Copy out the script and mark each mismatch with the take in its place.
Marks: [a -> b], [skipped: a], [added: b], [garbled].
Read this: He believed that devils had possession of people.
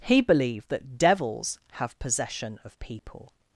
He believed that devils [had -> have] possession of people.